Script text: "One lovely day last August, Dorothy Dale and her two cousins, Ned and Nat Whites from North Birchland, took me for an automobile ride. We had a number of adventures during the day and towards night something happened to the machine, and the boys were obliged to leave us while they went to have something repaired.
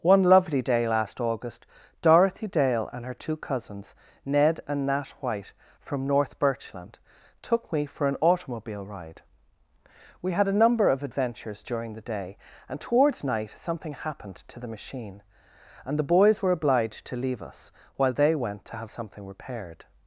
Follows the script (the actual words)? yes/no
no